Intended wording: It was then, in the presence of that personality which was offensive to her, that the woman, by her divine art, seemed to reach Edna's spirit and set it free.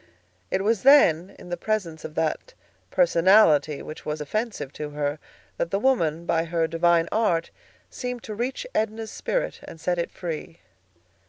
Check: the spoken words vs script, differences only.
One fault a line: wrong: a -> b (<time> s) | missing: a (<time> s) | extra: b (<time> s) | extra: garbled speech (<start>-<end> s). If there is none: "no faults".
no faults